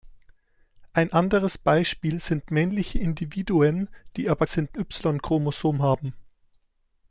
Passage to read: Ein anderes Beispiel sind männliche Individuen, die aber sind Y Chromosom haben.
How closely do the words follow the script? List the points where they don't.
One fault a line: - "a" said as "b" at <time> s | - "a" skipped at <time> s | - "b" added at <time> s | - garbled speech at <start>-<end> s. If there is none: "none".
none